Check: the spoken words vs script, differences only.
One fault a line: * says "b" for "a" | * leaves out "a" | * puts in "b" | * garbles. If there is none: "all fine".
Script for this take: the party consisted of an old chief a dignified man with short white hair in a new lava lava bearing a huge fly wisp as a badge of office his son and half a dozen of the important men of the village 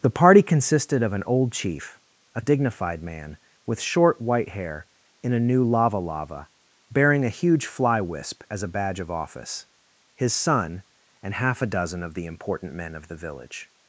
all fine